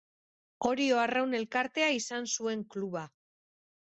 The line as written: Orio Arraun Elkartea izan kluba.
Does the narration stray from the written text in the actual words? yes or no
yes